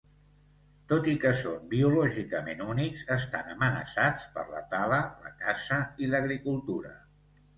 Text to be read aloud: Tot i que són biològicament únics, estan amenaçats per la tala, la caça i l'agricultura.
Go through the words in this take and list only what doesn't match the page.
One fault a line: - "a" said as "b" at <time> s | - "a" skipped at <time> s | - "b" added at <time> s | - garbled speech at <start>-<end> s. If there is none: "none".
none